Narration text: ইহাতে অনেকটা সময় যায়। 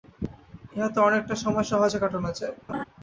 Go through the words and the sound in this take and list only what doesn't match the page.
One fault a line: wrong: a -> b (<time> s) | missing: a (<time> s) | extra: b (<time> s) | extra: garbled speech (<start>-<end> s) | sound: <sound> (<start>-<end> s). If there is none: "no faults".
extra: সহজে কাটানো (1.7 s)
sound: laugh (2.7-2.8 s)